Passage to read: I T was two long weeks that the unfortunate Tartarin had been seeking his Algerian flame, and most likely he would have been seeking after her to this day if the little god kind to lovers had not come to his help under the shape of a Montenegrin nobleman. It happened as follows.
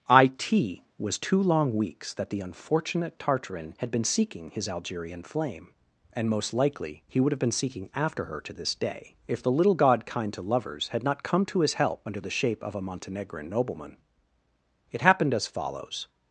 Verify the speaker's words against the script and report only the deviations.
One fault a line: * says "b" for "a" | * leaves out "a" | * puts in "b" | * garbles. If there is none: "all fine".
all fine